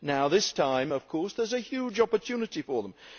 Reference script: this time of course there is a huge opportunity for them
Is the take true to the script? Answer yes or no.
yes